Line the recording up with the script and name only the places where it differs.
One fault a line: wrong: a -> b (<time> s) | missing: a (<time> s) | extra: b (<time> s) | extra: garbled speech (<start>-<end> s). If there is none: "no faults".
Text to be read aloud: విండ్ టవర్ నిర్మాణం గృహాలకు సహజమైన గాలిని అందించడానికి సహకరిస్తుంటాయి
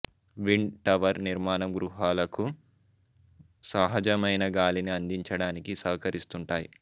no faults